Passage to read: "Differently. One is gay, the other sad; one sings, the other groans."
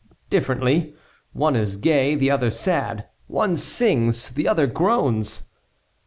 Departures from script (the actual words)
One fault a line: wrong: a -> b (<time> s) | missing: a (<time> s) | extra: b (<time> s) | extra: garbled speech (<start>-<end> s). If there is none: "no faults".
no faults